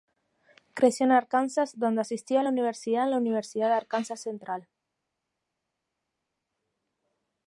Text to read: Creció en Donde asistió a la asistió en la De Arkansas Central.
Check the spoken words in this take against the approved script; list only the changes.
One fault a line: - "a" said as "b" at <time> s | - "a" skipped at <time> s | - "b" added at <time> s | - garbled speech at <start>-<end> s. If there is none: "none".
- "Arkansas" added at 1.1 s
- "asistió" said as "universidad" at 2.5 s
- "Universidad" added at 3.2 s